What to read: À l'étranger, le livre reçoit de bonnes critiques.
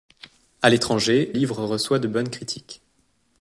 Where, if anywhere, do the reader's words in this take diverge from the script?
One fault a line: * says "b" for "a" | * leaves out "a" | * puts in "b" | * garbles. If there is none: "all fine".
* leaves out "le"